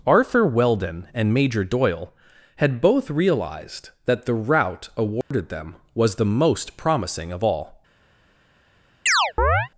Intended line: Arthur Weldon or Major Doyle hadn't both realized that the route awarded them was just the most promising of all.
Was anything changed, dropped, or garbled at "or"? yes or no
yes